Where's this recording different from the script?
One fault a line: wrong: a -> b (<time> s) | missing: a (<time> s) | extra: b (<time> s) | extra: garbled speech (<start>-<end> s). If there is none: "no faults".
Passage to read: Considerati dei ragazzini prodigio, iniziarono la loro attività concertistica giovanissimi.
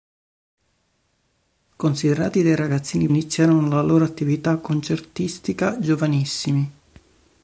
missing: prodigio (3.1 s)